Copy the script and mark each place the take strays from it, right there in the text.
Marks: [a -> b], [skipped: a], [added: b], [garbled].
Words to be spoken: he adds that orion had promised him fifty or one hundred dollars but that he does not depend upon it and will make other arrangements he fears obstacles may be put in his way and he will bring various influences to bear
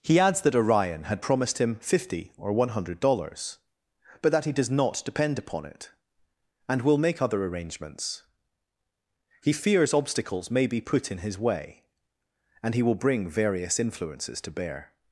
he adds that orion had promised him fifty or one hundred dollars but that he does not depend upon it and will make other arrangements he fears obstacles may be put in his way and he will bring various influences to bear